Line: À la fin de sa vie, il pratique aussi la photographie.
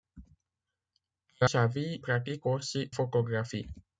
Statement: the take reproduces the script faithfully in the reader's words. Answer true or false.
false